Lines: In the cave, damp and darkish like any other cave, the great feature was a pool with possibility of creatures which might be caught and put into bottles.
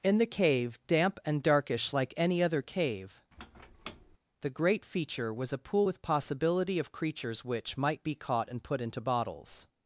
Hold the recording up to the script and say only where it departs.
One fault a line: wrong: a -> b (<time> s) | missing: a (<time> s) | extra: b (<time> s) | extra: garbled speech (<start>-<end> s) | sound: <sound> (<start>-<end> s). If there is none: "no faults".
sound: squeak (3.3-4.2 s)